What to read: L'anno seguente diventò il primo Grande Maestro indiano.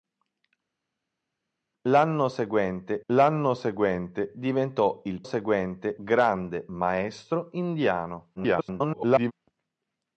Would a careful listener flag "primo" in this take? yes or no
yes